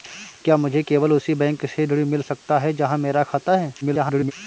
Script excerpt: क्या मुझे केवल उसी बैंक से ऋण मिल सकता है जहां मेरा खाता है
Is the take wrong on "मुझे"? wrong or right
right